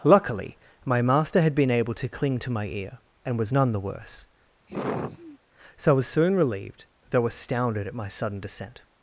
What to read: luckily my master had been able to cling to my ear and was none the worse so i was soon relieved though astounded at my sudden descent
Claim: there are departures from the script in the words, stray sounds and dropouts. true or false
true